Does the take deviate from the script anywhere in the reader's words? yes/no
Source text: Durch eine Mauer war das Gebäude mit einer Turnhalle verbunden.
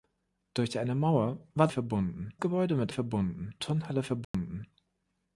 yes